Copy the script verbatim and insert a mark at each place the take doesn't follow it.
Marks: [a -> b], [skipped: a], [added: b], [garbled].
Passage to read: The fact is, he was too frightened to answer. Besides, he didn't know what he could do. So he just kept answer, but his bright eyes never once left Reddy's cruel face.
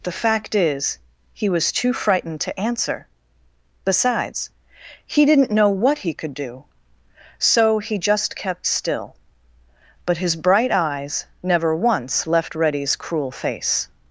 The fact is, he was too frightened to answer. Besides, he didn't know what he could do. So he just kept [answer, -> still] but his bright eyes never once left Reddy's cruel face.